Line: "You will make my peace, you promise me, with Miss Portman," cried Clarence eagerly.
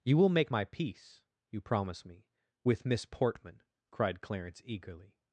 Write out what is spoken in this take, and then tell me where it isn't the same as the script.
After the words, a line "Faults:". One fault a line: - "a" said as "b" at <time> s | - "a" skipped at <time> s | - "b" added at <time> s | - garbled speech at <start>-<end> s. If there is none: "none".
"You will make my peace, you promise me, with Miss Portman," cried Clarence eagerly.
Faults:
none